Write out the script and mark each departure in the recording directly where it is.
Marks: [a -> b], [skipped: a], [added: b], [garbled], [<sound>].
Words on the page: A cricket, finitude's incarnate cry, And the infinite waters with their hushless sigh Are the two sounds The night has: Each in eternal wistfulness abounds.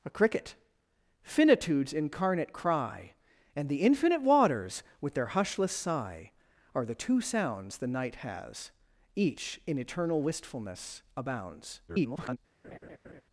A cricket, finitude's incarnate cry, And the infinite waters with their hushless sigh Are the two sounds The night has: Each in eternal wistfulness abounds. [garbled] [laugh]